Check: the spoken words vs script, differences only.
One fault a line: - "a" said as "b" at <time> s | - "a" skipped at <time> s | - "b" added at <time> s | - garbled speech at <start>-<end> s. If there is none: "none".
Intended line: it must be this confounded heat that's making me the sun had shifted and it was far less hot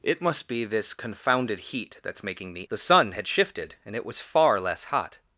none